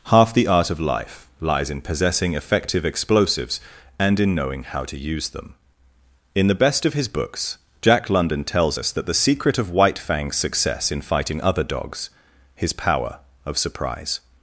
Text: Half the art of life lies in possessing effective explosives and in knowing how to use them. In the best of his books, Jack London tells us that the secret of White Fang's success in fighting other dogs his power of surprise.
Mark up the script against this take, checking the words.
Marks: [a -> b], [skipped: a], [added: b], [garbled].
Half the art of life lies in possessing effective explosives and in knowing how to use them. In the best of his books, Jack London tells us that the secret of White Fang's success in fighting other dogs his power of surprise.